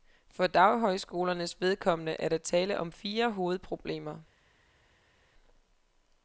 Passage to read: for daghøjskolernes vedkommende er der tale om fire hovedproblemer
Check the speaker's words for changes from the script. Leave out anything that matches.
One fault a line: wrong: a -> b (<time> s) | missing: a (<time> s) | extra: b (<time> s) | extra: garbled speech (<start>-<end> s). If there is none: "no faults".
no faults